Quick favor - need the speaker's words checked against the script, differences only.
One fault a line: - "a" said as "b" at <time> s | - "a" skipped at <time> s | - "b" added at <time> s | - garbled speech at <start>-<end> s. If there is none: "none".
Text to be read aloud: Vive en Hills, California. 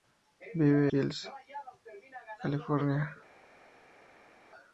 none